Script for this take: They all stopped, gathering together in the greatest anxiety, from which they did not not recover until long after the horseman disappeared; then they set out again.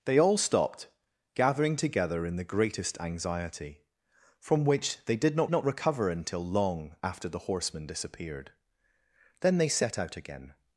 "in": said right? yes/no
yes